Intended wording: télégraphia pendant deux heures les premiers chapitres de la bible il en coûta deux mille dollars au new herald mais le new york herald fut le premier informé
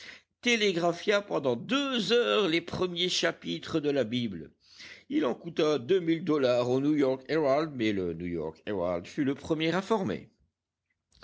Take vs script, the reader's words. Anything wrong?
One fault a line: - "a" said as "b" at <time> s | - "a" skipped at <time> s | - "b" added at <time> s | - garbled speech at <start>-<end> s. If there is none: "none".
- "york" added at 7.0 s